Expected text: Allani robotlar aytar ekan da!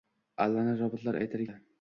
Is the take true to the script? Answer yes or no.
no